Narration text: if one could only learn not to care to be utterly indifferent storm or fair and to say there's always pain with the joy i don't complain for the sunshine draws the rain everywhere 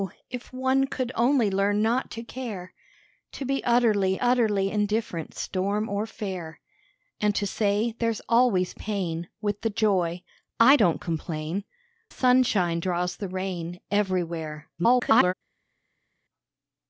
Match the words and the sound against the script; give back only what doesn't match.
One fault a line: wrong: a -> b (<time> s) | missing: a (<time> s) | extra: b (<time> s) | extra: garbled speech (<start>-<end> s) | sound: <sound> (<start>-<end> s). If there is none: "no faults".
extra: utterly (4.2 s)
missing: for the (11.6 s)
extra: garbled speech (14.8-15.3 s)